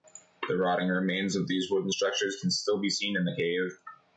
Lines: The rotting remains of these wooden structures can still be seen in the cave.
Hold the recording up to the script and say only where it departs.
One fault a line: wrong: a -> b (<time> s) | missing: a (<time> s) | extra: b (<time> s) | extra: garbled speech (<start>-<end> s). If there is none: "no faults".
no faults